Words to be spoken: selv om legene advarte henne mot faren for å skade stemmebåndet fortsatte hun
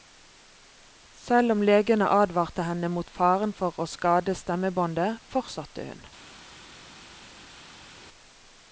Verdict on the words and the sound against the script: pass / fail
pass